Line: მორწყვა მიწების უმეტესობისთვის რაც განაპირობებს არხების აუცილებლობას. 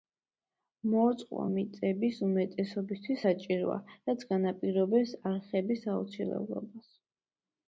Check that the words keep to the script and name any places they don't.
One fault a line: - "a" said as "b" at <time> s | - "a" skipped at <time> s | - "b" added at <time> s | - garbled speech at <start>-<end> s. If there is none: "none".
- "საჭიროა" added at 3.2 s